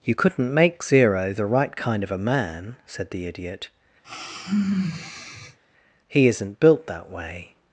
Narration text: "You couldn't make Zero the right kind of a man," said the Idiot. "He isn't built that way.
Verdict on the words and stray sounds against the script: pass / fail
fail